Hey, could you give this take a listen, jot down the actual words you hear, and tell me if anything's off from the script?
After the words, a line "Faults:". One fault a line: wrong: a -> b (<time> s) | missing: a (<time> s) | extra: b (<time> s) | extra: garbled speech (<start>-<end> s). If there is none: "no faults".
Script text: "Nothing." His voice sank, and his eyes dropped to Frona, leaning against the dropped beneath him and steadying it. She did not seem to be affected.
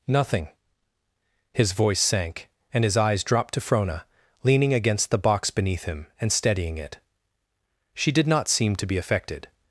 "Nothing." His voice sank, and his eyes dropped to Frona, leaning against the box beneath him and steadying it. She did not seem to be affected.
Faults:
wrong: dropped -> box (5.2 s)